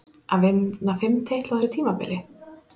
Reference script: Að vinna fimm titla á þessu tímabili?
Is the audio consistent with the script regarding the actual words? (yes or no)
yes